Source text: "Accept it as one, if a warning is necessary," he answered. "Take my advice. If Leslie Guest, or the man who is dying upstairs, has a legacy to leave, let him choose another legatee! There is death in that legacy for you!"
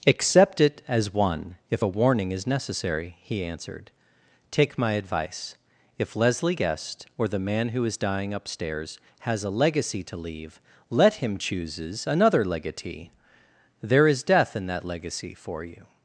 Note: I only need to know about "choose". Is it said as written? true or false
false